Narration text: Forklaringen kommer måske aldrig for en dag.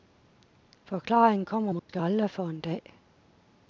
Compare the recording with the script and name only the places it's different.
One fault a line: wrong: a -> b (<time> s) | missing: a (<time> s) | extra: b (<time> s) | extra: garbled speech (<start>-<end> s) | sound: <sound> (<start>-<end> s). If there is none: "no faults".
sound: dropout (1.8-1.9 s)